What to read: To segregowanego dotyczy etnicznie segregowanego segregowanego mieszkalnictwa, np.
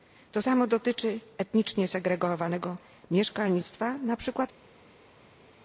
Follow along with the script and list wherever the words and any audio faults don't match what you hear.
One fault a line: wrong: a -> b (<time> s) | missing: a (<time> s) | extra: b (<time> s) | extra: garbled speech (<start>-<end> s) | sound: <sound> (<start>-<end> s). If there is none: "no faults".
wrong: segregowanego -> samo (0.4 s)
missing: segregowanego (2.8 s)